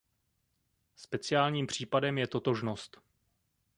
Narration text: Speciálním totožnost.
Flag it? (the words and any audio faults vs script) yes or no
yes